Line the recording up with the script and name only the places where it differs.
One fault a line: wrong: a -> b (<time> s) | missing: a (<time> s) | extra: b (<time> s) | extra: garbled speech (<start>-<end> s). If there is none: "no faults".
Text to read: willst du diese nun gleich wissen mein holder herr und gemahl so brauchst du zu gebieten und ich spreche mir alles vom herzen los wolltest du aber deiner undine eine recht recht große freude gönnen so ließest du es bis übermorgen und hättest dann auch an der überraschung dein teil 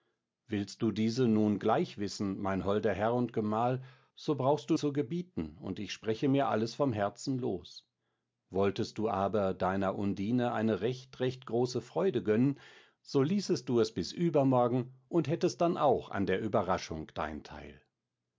no faults